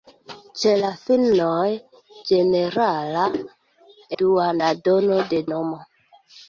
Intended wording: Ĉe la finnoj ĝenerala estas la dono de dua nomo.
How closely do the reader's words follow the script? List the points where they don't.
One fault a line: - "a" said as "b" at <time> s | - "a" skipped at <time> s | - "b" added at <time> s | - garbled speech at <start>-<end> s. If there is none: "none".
- "estas" said as "dua" at 4.2 s
- "dua" skipped at 5.4 s